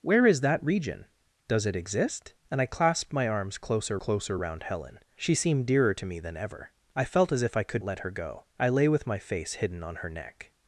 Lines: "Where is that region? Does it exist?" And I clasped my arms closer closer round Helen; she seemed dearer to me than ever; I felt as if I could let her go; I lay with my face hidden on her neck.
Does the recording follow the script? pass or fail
pass